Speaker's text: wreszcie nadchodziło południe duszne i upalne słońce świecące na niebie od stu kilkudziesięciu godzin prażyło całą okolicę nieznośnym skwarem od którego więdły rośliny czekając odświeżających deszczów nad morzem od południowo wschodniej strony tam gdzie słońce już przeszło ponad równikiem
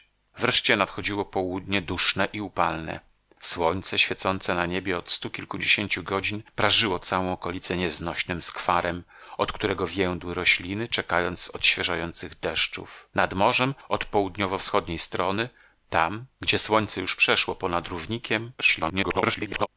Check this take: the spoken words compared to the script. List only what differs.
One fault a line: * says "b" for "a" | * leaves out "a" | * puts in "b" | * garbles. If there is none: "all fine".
* garbles